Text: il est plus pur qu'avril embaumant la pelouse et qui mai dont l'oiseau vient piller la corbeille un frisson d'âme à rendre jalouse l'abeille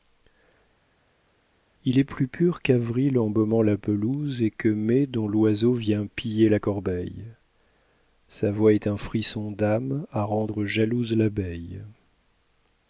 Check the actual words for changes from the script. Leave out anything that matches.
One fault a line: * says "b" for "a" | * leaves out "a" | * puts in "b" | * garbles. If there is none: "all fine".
* says "que" for "qui"
* puts in "sa voix est"